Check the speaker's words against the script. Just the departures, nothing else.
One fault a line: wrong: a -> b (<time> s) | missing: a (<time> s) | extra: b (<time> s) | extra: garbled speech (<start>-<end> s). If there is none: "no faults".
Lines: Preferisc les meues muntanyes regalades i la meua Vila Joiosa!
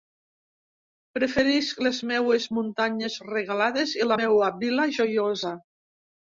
no faults